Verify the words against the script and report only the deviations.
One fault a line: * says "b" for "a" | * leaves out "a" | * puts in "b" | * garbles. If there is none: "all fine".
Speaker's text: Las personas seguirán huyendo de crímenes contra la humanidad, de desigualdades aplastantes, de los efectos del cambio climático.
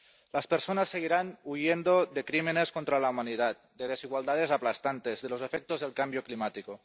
all fine